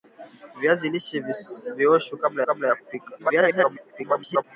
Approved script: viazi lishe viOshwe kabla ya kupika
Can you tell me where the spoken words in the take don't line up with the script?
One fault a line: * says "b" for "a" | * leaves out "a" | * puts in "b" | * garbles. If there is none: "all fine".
* puts in "kabla"
* garbles